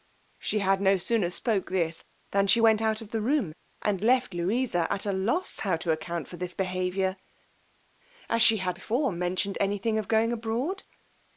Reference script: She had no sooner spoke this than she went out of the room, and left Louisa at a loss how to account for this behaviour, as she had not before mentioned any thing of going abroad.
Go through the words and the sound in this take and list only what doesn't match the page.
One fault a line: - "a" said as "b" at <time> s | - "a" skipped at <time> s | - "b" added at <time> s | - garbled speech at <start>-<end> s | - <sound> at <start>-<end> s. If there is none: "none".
- "not" skipped at 8.8 s